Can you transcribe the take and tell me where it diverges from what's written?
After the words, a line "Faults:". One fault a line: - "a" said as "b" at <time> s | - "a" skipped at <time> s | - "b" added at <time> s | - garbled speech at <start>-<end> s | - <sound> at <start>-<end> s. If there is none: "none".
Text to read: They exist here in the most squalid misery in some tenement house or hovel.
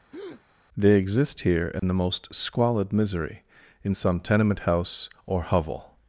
They exist here in the most squalid misery in some tenement house or hovel.
Faults:
- breath at 0.1-0.4 s
- dropout at 1.8-1.8 s